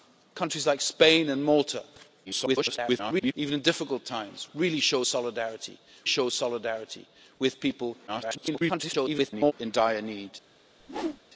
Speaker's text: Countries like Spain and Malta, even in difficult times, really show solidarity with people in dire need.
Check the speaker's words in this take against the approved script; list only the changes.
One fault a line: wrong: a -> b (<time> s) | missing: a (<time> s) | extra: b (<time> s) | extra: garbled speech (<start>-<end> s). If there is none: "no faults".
extra: garbled speech (2.3-3.3 s)
extra: show solidarity (6.0 s)
extra: garbled speech (8.1-9.5 s)